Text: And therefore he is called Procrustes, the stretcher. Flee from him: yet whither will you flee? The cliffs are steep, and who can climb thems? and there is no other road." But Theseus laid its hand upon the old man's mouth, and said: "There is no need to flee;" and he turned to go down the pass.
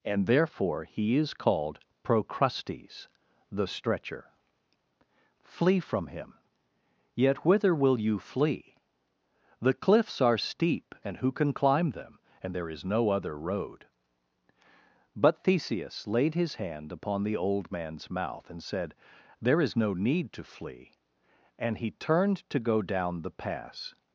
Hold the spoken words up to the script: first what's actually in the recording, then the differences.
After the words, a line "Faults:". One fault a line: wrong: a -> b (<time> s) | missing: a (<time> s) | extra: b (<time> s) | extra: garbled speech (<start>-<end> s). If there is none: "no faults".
And therefore he is called Procrustes, the stretcher. Flee from him: yet whither will you flee? The cliffs are steep, and who can climb them? and there is no other road." But Theseus laid his hand upon the old man's mouth, and said: "There is no need to flee;" and he turned to go down the pass.
Faults:
wrong: thems -> them (11.9 s)
wrong: its -> his (16.3 s)